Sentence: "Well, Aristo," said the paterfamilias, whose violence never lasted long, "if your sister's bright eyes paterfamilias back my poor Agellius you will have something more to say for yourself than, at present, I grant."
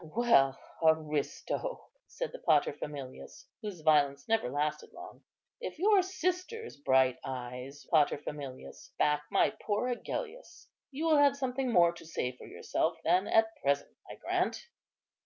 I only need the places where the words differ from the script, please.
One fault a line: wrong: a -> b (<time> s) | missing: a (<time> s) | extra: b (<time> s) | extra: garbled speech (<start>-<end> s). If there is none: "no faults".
no faults